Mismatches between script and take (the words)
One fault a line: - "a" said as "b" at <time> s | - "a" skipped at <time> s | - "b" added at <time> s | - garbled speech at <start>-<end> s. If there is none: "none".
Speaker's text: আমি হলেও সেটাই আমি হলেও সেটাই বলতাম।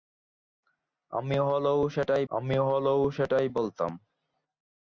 none